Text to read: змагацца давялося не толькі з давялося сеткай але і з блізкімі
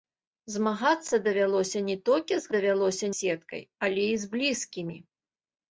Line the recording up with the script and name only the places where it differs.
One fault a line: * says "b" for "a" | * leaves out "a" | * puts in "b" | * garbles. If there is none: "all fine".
all fine